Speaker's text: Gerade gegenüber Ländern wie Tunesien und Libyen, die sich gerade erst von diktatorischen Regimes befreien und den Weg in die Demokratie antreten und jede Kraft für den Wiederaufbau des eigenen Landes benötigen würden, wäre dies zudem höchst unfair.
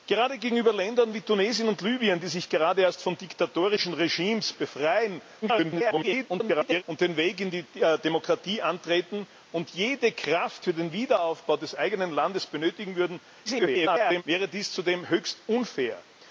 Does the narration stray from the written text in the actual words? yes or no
yes